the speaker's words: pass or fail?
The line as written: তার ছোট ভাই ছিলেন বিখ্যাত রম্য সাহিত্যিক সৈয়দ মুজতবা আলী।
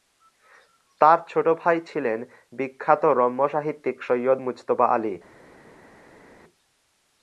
pass